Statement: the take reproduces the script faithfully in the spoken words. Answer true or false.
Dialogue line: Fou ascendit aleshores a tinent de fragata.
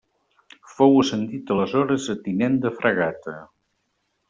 true